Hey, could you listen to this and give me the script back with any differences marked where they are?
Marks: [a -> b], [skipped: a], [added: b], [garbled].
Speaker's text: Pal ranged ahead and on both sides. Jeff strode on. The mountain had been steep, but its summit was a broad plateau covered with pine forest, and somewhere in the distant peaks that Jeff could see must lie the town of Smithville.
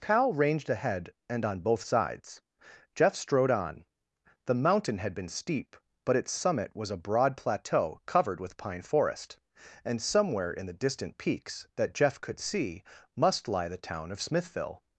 [Pal -> Cal] ranged ahead and on both sides. Jeff strode on. The mountain had been steep, but its summit was a broad plateau covered with pine forest, and somewhere in the distant peaks that Jeff could see must lie the town of Smithville.